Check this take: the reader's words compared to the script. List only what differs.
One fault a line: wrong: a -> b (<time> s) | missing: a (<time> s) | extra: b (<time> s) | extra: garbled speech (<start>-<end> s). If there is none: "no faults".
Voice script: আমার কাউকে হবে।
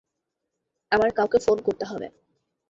extra: ফোন করতে (1.4 s)